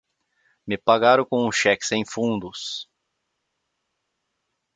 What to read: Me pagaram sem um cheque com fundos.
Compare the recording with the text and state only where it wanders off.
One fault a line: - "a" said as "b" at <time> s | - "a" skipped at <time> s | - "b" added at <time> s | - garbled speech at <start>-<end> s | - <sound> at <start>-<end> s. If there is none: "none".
- "sem" said as "com" at 1.2 s
- "com" said as "sem" at 1.9 s